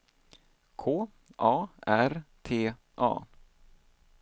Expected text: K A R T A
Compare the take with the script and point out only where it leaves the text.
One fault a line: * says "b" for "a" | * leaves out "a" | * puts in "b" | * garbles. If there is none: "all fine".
all fine